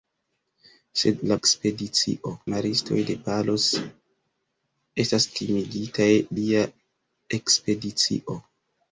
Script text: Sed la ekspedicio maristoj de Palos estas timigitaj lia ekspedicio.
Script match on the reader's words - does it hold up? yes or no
yes